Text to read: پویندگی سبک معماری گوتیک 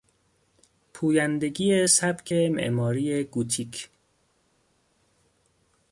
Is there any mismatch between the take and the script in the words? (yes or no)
no